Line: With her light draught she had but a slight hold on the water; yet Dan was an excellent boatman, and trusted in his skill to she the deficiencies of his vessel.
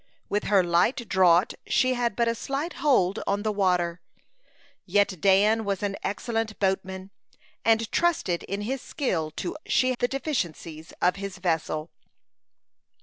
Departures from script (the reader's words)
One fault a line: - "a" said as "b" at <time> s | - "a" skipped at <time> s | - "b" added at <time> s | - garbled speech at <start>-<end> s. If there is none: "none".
none